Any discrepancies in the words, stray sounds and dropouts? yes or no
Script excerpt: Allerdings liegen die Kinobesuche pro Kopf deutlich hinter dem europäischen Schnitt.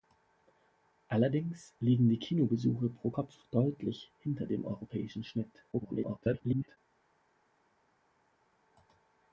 yes